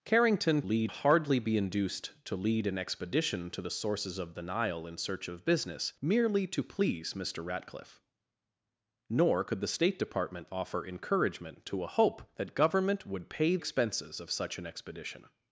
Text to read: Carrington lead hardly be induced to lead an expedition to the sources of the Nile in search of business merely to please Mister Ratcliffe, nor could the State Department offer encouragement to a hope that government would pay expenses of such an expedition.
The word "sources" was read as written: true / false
true